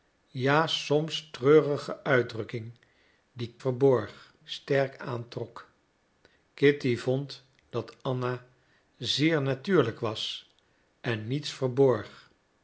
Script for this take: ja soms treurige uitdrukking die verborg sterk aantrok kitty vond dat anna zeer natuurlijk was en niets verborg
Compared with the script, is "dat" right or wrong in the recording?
right